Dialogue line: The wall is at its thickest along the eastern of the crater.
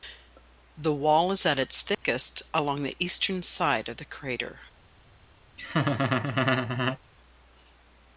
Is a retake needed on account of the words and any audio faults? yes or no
yes